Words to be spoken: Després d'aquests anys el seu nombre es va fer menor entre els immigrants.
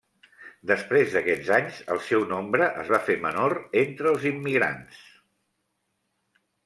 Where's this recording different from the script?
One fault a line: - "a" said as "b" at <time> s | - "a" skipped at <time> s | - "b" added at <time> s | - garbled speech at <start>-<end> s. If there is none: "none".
none